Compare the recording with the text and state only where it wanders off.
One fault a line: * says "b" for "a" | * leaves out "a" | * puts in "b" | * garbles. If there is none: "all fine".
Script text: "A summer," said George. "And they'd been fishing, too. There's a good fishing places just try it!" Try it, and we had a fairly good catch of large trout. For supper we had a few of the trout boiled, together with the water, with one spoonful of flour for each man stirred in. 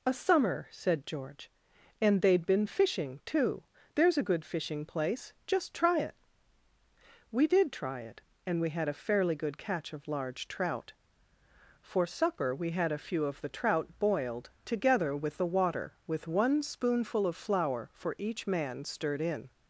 * says "place" for "places"
* puts in "We did"